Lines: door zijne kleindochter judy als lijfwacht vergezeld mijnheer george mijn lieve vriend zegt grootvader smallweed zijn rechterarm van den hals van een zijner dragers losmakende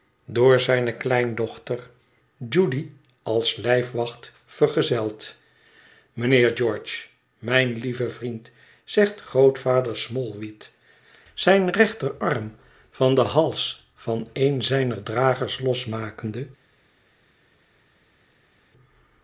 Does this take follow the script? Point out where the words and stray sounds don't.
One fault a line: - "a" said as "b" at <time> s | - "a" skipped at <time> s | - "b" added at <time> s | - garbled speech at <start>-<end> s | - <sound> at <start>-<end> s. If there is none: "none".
none